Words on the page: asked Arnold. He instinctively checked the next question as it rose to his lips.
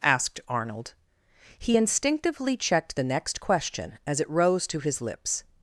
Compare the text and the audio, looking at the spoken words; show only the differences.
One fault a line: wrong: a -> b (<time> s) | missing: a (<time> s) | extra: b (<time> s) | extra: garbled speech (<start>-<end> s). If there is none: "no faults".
no faults